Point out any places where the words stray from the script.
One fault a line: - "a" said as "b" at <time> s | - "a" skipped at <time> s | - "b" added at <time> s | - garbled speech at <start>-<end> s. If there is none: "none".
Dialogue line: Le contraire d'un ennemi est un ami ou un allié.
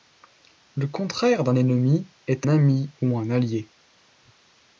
- "un" skipped at 2.5 s